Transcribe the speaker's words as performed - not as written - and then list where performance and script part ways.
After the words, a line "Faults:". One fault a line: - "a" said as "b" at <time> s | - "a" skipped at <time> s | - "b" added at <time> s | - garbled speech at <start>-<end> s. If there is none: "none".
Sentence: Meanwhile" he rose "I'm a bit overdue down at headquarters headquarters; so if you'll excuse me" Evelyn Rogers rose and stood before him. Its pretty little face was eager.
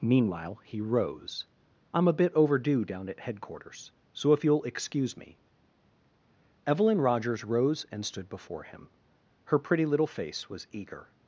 Meanwhile" he rose "I'm a bit overdue down at headquarters; so if you'll excuse me" Evelyn Rogers rose and stood before him. Her pretty little face was eager.
Faults:
- "headquarters" skipped at 3.9 s
- "Its" said as "Her" at 9.4 s